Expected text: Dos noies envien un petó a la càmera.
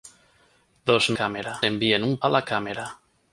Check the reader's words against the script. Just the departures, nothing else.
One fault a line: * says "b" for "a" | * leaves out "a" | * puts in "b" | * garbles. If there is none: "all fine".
* says "càmera" for "noies"
* leaves out "petó"